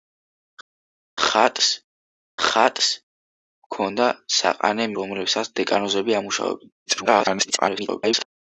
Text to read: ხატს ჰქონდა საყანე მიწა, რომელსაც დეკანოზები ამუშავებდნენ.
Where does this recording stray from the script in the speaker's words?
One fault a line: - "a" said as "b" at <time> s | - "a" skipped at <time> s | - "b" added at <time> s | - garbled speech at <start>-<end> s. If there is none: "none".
- "ხატს" added at 2.5 s
- "მიწა" skipped at 4.9 s
- garbled speech at 6.9-8.3 s